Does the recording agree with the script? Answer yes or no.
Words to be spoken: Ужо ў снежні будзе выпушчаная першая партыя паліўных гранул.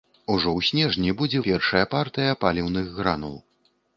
no